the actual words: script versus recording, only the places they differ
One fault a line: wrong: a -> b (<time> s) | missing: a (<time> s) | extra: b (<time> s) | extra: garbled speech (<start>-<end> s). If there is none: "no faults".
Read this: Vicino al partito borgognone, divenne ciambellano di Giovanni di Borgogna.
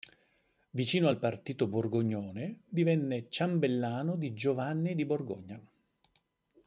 no faults